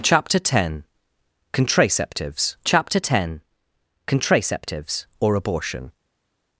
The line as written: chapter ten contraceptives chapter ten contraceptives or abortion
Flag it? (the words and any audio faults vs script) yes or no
no